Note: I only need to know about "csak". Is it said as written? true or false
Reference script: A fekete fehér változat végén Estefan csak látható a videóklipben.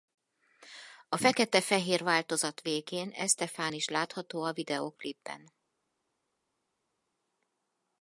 false